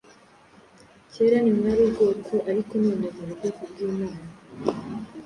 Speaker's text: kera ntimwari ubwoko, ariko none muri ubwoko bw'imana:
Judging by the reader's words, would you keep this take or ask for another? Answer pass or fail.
pass